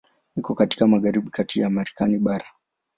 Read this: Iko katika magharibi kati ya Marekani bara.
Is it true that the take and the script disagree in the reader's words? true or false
false